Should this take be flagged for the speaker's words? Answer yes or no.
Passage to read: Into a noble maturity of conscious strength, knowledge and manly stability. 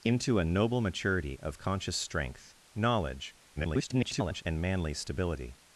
yes